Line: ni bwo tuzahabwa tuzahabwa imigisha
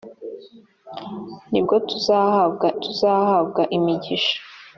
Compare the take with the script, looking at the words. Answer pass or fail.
pass